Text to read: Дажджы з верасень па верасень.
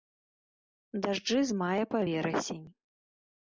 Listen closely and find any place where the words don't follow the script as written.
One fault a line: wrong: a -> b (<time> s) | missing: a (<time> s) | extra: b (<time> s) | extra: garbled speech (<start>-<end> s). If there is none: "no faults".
wrong: верасень -> мая (1.6 s)